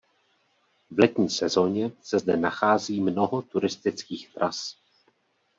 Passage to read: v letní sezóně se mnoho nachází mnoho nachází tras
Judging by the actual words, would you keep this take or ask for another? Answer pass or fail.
fail